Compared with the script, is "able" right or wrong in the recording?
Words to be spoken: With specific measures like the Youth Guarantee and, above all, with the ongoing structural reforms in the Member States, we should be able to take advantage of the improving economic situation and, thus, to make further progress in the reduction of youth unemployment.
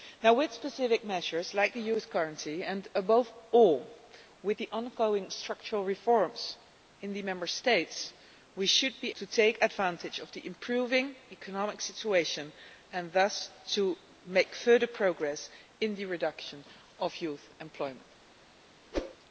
wrong